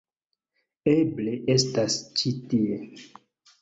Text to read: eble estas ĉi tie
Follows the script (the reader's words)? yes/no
yes